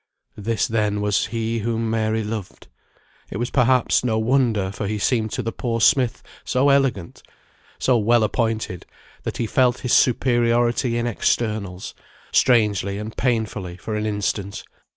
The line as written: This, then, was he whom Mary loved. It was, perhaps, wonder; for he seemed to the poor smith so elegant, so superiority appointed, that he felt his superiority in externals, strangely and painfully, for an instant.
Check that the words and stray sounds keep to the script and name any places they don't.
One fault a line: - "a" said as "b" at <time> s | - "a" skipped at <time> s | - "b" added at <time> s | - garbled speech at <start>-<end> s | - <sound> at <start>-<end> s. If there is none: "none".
- "no" added at 4.0 s
- "superiority" said as "well" at 8.0 s